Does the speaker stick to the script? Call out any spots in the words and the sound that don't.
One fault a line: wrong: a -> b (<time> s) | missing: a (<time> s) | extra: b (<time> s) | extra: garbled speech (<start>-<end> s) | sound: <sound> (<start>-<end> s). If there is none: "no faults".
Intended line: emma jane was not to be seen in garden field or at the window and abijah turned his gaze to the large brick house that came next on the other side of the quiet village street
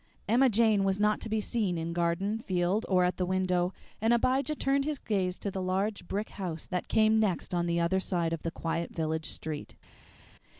no faults